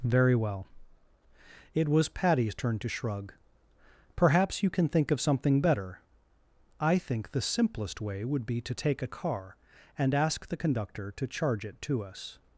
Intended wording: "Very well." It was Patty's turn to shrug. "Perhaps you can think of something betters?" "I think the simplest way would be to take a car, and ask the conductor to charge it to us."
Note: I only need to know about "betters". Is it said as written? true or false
false